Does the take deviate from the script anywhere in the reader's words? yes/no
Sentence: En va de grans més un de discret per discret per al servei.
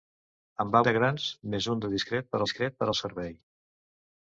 no